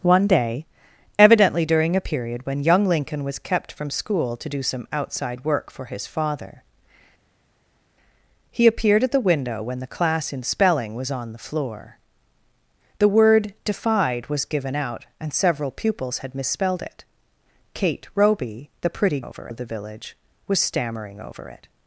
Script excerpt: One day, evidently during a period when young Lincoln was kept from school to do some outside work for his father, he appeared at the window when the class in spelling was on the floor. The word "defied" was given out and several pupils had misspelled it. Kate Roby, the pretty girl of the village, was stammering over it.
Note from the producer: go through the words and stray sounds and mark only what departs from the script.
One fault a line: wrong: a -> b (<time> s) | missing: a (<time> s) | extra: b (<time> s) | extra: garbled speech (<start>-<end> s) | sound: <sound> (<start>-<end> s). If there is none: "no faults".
wrong: girl -> over (19.2 s)